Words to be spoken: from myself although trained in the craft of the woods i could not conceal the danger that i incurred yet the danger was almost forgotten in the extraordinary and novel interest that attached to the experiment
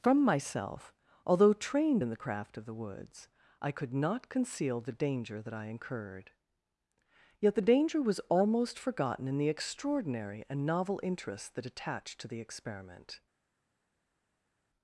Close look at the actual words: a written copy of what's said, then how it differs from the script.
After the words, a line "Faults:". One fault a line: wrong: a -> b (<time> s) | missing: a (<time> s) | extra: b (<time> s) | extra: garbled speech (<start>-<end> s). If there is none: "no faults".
from myself although trained in the craft of the woods i could not conceal the danger that i incurred yet the danger was almost forgotten in the extraordinary and novel interest that attached to the experiment
Faults:
no faults